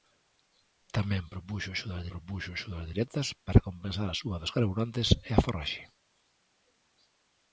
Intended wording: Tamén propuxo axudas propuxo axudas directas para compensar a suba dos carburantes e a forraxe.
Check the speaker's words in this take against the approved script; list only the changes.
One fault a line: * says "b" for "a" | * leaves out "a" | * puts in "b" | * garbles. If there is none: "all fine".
all fine